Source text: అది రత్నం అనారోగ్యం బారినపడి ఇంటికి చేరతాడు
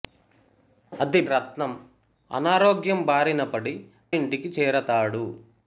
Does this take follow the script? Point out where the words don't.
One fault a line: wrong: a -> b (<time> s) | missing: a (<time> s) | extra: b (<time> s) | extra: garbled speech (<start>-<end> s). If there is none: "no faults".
no faults